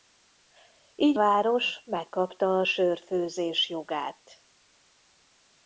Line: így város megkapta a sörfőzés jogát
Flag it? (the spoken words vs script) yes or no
no